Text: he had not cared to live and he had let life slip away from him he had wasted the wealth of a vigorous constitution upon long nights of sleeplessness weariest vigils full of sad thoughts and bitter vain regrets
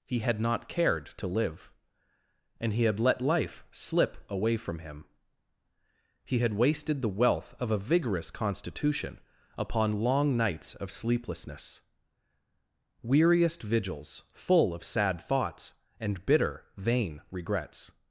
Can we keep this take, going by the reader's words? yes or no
yes